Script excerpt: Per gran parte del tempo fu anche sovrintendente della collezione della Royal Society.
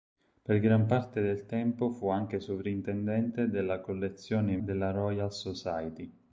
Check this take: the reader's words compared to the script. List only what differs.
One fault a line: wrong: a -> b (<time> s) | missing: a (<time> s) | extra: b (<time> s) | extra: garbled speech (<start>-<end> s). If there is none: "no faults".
no faults